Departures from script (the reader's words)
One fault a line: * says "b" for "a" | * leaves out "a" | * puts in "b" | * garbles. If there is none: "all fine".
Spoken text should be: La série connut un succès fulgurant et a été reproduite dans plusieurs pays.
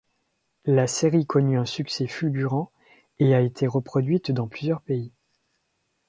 all fine